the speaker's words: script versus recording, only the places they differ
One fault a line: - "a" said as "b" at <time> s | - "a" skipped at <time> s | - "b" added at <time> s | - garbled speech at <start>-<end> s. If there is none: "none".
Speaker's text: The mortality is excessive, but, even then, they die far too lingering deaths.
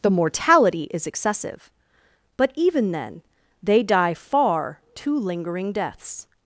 none